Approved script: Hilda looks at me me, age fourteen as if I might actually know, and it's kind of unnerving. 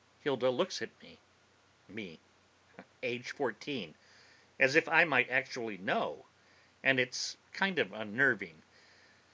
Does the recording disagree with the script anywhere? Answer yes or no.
no